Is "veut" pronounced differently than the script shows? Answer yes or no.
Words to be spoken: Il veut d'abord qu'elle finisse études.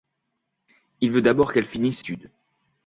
no